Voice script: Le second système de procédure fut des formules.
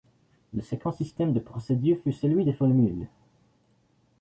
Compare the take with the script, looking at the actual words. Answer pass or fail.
fail